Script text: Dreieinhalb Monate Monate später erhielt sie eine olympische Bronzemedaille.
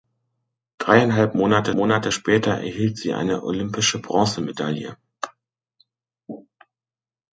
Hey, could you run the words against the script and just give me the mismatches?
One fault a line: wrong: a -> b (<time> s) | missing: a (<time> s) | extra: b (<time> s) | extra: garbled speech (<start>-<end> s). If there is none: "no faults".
no faults